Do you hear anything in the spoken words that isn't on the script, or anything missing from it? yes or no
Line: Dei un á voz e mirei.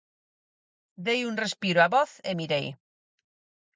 yes